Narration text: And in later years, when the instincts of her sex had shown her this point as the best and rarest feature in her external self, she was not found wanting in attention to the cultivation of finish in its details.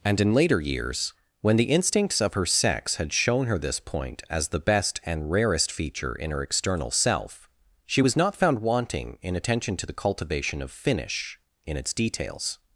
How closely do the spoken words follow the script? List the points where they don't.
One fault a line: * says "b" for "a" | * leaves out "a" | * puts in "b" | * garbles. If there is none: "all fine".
all fine